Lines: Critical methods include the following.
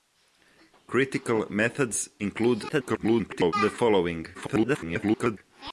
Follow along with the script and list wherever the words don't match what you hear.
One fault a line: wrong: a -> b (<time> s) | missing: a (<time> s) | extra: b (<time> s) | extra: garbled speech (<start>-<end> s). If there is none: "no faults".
extra: garbled speech (2.7-3.5 s)
extra: garbled speech (4.3-5.4 s)